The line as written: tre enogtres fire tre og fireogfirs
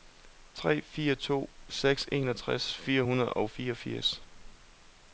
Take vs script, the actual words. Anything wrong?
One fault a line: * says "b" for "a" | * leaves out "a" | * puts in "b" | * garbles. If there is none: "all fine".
* puts in "fire to seks"
* says "hundrede" for "tre"